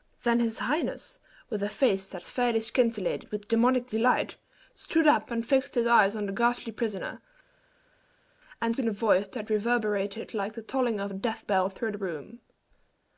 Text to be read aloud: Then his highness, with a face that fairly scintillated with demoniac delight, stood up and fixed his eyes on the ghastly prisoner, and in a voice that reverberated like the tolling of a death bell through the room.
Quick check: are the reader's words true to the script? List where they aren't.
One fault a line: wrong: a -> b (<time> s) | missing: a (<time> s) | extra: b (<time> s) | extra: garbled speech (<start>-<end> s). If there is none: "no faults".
no faults